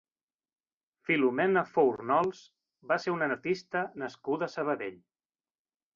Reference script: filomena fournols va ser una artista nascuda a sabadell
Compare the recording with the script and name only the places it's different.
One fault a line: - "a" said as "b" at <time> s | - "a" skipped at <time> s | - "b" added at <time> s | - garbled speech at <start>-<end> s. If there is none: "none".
none